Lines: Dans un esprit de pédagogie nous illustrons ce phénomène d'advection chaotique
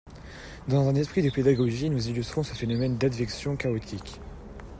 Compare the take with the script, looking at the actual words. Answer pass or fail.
pass